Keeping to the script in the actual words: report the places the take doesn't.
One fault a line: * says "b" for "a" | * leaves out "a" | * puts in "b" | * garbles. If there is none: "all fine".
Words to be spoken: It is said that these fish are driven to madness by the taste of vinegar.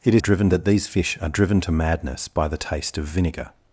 * says "driven" for "said"